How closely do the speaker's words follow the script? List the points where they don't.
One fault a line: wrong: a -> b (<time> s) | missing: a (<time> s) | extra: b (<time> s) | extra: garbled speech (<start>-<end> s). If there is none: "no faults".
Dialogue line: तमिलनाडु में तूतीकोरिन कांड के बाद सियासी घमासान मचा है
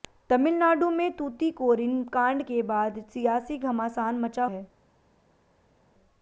no faults